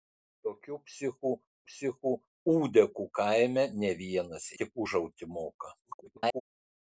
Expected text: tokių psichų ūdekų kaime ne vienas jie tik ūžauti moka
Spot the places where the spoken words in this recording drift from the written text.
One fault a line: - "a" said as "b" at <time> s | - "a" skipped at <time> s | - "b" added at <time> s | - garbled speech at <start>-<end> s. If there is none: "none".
- "psichų" added at 1.7 s
- "jie" skipped at 4.5 s
- garbled speech at 5.8-6.4 s